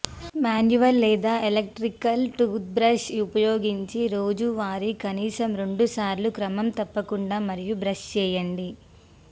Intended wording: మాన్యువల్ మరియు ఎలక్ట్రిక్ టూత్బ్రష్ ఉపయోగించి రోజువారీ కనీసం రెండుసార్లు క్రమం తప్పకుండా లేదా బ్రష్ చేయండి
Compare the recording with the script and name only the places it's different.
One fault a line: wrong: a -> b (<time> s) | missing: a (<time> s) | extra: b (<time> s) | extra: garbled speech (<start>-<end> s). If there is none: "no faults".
wrong: మరియు -> లేదా (1.0 s)
wrong: లేదా -> మరియు (7.5 s)